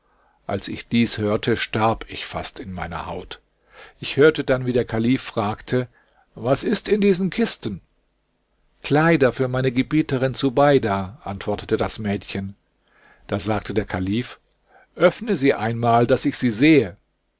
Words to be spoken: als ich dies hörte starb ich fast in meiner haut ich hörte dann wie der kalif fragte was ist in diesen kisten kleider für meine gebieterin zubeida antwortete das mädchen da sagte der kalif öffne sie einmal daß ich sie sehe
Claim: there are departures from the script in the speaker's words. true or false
false